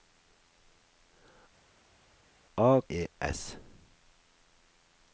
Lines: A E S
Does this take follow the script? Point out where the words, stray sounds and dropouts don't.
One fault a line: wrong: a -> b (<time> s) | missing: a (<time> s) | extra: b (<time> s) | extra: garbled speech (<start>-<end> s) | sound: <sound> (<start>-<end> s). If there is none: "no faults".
no faults